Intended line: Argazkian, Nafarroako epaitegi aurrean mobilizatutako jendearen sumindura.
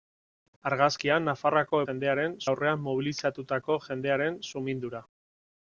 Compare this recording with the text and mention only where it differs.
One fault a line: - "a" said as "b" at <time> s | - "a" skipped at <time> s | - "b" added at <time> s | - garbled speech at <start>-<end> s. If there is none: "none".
- "epaitegi" said as "jendearen" at 1.9 s